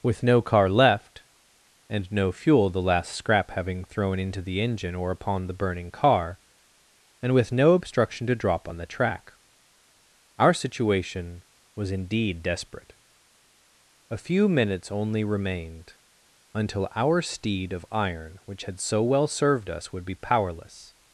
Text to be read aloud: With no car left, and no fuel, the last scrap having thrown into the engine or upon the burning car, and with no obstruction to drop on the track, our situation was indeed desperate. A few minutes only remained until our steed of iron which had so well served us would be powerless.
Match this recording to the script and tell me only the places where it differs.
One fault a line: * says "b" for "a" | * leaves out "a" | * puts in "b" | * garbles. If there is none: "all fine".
all fine